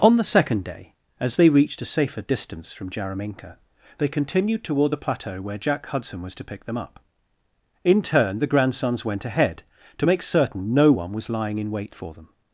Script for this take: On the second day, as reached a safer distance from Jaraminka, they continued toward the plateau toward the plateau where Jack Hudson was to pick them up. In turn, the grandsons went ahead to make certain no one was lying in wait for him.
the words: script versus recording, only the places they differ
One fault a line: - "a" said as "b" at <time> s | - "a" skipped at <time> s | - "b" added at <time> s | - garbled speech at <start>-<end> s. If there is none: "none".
- "they" added at 1.4 s
- "toward the plateau" skipped at 5.4 s
- "him" said as "them" at 12.1 s